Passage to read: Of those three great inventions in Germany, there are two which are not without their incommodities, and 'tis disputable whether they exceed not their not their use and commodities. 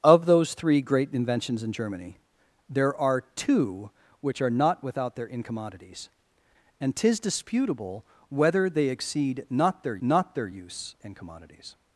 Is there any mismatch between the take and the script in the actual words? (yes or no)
no